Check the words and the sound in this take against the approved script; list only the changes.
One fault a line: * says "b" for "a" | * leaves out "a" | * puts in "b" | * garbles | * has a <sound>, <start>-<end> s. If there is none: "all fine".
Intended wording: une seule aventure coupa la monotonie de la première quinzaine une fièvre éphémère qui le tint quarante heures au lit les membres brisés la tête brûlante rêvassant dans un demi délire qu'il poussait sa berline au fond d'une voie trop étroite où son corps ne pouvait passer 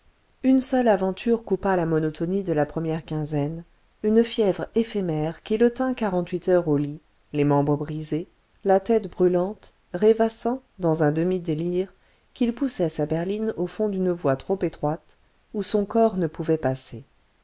* puts in "huit"